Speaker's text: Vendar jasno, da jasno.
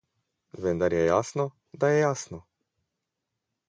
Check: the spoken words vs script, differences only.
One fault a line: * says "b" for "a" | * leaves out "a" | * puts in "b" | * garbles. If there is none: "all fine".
* puts in "je"
* puts in "je"